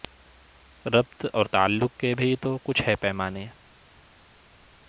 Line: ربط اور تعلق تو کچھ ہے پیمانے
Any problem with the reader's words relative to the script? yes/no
yes